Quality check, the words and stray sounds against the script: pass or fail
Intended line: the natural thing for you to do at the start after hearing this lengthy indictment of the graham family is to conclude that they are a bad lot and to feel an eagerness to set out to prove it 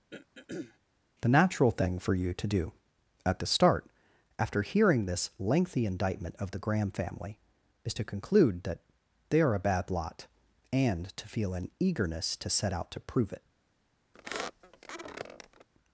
fail